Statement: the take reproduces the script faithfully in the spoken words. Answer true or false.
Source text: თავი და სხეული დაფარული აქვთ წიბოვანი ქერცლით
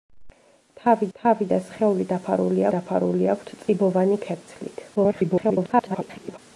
false